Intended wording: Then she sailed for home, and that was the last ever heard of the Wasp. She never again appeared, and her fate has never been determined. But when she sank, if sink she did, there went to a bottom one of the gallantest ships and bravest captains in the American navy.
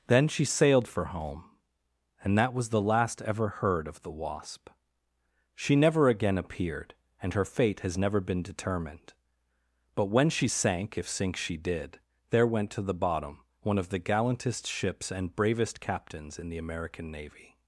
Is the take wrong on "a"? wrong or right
wrong